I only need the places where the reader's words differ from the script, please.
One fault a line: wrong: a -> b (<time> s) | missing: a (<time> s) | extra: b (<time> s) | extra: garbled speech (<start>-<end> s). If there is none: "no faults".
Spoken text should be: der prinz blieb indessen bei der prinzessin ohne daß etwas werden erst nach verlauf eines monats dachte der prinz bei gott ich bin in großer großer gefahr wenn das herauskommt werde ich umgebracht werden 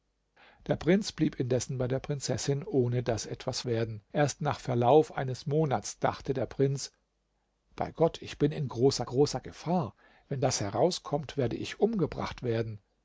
no faults